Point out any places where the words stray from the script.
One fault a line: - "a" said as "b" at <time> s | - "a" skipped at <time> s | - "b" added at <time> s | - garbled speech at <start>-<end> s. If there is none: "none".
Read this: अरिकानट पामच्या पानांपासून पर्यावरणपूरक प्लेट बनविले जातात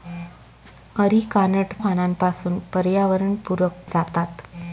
- "पामच्या" skipped at 1.7 s
- "प्लेट बनविले" skipped at 3.8 s